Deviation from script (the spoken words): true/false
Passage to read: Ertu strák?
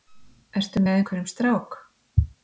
true